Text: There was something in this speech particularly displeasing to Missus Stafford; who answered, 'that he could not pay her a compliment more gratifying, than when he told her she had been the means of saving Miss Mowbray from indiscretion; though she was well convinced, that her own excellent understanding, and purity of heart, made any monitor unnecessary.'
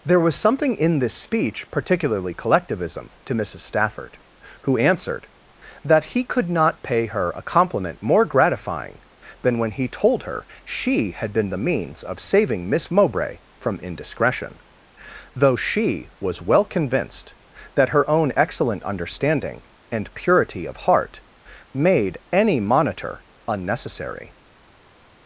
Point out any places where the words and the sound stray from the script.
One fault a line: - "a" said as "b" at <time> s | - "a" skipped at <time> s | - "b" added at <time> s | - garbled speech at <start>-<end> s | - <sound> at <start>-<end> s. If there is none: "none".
- "displeasing" said as "collectivism" at 2.3 s